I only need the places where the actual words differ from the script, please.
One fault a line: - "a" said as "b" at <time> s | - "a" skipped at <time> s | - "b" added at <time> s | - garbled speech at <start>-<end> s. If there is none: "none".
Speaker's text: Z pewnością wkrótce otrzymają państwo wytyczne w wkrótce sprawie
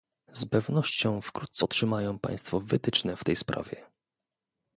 - "wkrótce" said as "tej" at 3.2 s